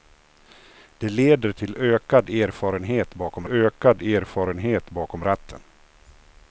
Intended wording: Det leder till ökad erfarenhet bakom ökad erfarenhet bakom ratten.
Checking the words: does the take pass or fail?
pass